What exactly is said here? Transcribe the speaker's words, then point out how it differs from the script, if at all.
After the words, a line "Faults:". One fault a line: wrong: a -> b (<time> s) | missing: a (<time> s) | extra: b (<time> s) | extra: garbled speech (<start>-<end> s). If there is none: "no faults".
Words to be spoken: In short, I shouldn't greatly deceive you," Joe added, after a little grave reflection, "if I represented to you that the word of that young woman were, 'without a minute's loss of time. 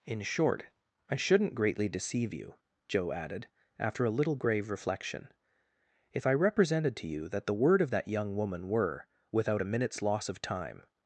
In short, I shouldn't greatly deceive you," Joe added, after a little grave reflection, "if I represented to you that the word of that young woman were, 'without a minute's loss of time.
Faults:
no faults